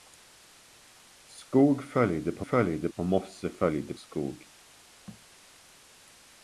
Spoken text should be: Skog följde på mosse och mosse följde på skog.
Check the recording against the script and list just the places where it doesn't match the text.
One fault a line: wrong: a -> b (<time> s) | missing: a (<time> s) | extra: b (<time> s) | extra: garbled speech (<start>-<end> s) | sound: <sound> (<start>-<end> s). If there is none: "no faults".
wrong: mosse -> följde (2.4 s)
missing: på (3.9 s)
sound: thud (5.1-5.3 s)